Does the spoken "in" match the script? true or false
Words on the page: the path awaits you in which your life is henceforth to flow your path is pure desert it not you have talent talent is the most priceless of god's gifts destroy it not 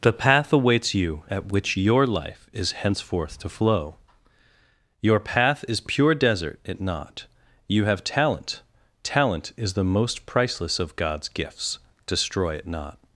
false